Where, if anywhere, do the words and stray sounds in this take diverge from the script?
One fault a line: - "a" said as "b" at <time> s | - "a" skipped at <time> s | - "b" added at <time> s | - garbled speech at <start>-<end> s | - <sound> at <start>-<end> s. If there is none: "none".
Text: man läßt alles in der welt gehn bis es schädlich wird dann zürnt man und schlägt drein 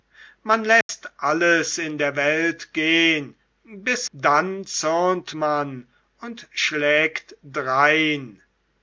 - dropout at 0.8-0.9 s
- "es schädlich wird" skipped at 4.1 s